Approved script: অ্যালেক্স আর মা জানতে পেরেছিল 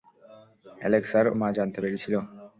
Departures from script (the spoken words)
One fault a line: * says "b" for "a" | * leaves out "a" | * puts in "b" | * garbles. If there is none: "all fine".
all fine